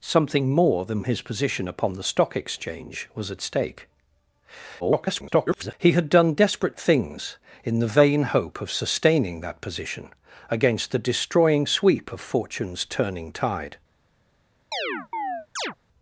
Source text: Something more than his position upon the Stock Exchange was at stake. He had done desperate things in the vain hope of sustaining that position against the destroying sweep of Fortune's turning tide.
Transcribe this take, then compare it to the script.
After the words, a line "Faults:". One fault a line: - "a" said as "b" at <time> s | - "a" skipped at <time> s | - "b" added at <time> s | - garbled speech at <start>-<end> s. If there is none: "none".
Something more than his position upon the Stock Exchange was at stake. [garbled] He had done desperate things in the vain hope of sustaining that position against the destroying sweep of Fortune's turning tide.
Faults:
- garbled speech at 4.8-5.7 s